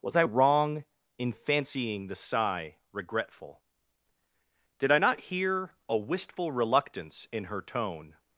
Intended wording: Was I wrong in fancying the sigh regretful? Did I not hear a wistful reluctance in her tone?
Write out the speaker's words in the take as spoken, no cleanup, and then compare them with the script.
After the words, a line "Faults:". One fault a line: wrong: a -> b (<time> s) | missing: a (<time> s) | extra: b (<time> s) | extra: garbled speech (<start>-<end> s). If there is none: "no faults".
Was I wrong in fancying the sigh regretful? Did I not hear a wistful reluctance in her tone?
Faults:
no faults